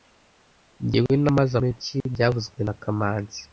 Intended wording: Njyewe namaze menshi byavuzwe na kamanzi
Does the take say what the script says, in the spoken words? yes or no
yes